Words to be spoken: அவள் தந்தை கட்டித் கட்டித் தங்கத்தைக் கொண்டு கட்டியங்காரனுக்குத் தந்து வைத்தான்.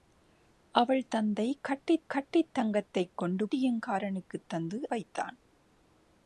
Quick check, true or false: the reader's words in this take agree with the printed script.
true